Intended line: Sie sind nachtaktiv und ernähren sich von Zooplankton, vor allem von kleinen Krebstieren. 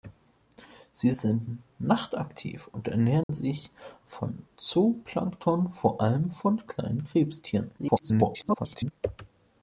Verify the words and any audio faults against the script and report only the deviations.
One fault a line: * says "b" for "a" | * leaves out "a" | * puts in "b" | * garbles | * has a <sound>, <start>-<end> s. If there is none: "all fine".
* has a dropout, 3.2-3.3 s
* garbles